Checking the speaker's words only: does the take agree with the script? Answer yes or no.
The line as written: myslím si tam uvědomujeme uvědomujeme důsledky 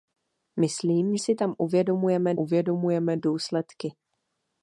yes